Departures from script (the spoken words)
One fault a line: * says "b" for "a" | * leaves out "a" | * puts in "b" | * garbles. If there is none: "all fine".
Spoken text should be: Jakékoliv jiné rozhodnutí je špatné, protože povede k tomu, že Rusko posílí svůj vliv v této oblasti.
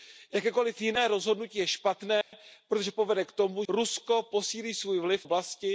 * leaves out "že"
* leaves out "této"